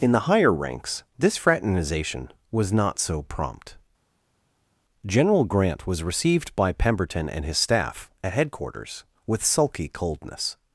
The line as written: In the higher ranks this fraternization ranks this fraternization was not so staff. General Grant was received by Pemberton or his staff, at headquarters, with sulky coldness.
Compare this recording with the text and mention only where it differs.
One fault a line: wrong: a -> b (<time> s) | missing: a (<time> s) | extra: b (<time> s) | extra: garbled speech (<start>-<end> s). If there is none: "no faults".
missing: ranks this fraternization (2.3 s)
wrong: staff -> prompt (3.2 s)
wrong: or -> and (7.3 s)